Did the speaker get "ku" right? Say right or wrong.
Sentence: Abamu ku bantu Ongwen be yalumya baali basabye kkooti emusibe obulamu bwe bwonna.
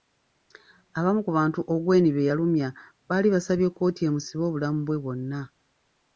right